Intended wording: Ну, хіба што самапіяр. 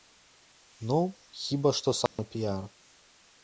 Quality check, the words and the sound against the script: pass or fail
fail